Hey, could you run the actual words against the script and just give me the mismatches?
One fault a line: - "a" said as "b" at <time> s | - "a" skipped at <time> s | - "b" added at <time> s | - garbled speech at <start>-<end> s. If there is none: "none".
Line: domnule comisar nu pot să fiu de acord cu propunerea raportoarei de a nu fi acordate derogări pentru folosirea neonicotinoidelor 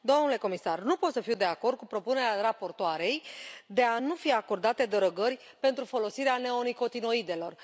none